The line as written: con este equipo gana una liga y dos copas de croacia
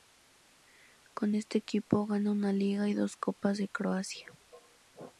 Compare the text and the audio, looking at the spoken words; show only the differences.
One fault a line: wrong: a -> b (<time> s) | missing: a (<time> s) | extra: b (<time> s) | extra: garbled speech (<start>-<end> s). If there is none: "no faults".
no faults